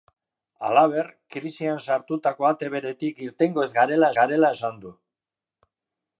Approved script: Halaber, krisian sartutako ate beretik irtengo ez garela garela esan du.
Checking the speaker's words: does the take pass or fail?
pass